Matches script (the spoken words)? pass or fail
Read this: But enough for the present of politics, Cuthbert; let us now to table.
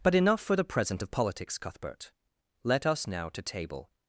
pass